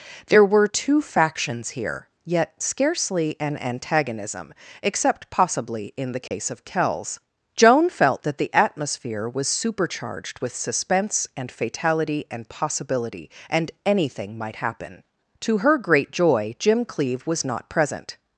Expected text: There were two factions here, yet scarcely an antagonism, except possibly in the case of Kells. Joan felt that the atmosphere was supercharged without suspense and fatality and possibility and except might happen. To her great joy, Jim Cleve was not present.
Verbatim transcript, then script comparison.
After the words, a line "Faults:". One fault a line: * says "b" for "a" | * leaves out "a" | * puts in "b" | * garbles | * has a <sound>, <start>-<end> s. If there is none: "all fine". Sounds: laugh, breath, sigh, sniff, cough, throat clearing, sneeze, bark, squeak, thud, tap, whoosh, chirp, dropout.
There were two factions here, yet scarcely an antagonism, except possibly in the case of Kells. Joan felt that the atmosphere was supercharged with suspense and fatality and possibility and anything might happen. To her great joy, Jim Cleve was not present.
Faults:
* has a dropout, 6.3-6.3 s
* says "with" for "without"
* says "anything" for "except"